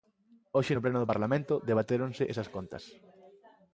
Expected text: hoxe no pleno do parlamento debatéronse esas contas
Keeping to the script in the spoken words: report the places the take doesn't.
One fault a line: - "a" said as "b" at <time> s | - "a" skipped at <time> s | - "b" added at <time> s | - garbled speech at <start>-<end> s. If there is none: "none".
none